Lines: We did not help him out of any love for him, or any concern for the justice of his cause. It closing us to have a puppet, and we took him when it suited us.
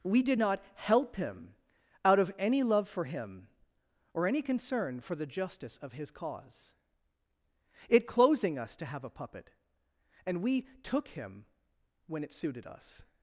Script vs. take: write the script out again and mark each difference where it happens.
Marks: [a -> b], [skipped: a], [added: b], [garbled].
We did not help him out of any love for him, or any concern for the justice of his cause. It closing us to have a puppet, and we took him when it suited us.